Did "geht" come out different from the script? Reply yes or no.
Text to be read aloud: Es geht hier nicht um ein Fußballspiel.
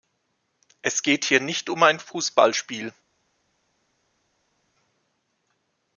no